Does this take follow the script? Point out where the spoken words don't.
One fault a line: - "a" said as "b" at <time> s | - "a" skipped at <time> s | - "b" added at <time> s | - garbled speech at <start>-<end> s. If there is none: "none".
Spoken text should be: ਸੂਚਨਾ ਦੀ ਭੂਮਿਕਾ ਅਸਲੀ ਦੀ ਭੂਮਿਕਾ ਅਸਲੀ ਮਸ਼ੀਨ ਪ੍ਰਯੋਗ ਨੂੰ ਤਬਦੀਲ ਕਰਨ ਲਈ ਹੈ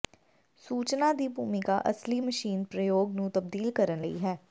- "ਦੀ ਭੂਮਿਕਾ ਅਸਲੀ" skipped at 2.2 s